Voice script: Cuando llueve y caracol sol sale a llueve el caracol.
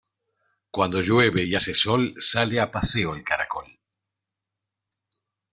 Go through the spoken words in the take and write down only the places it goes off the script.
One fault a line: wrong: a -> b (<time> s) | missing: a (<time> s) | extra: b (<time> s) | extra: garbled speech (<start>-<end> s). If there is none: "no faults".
wrong: caracol -> hace (1.5 s)
wrong: llueve -> paseo (2.7 s)